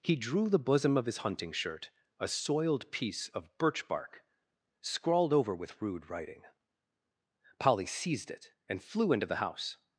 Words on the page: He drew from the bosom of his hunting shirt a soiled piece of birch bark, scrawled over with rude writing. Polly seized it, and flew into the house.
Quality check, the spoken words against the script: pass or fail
fail